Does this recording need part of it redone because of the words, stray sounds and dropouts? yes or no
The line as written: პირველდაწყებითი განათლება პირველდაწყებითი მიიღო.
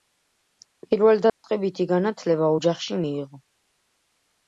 yes